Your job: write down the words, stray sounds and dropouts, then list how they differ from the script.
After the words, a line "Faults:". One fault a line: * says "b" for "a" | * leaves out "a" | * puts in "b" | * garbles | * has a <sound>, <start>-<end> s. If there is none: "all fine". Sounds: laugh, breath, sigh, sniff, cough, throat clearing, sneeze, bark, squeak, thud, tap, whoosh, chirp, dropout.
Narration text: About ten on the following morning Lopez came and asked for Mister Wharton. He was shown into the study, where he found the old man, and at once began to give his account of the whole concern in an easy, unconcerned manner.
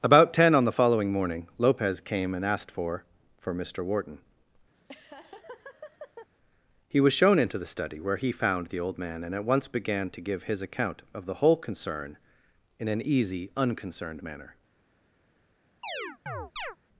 About ten on the following morning Lopez came and asked for for Mister Wharton. He was shown into the study, where he found the old man, and at once began to give his account of the whole concern in an easy, unconcerned manner.
Faults:
* puts in "for"
* has a laugh, 4.7-6.3 s
* has a chirp, 15.8-16.8 s